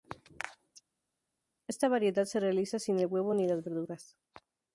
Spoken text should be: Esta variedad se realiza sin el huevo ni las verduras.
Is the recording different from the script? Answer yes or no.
no